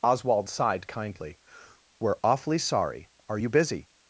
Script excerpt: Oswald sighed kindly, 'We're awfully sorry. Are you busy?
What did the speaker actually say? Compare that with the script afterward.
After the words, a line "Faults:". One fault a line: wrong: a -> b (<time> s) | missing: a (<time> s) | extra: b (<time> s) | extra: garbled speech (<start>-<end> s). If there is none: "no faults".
Oswald sighed kindly, 'We're awfully sorry. Are you busy?
Faults:
no faults